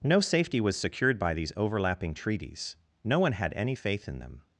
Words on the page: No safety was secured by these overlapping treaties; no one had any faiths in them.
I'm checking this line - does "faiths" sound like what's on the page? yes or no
no